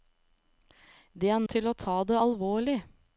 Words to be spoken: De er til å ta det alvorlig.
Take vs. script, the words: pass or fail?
pass